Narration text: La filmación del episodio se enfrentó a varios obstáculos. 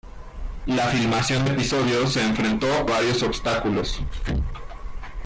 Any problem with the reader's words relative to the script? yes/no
yes